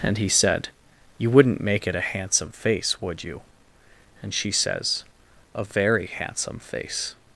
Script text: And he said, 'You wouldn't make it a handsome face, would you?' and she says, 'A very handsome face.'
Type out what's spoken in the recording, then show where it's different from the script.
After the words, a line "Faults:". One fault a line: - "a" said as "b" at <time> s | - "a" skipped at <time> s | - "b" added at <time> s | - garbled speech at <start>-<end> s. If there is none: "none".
And he said, 'You wouldn't make it a handsome face, would you?' and she says, 'A very handsome face.'
Faults:
none